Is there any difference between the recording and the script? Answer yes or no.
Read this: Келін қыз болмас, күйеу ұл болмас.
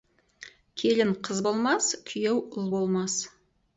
no